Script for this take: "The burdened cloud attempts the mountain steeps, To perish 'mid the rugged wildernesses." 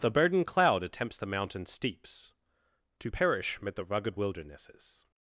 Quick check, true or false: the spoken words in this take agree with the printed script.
true